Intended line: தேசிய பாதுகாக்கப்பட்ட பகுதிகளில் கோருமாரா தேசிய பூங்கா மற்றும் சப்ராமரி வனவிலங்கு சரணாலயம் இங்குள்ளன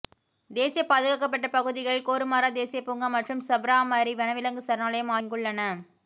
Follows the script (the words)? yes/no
yes